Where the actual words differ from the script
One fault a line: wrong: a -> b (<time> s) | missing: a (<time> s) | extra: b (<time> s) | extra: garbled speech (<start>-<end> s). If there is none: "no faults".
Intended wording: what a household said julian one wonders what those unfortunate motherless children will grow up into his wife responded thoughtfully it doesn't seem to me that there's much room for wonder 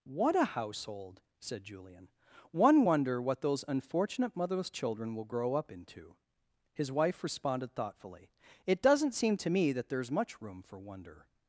wrong: wonders -> wonder (2.8 s)